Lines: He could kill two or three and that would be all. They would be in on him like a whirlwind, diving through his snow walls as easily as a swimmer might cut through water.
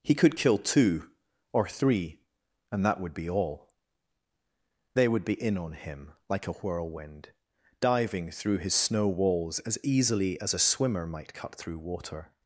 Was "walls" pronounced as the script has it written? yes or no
yes